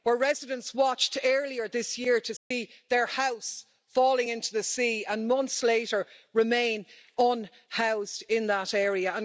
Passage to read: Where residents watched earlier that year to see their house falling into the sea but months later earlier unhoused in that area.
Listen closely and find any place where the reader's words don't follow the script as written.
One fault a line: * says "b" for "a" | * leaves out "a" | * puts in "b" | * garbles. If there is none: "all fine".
* says "this" for "that"
* says "and" for "but"
* says "remain" for "earlier"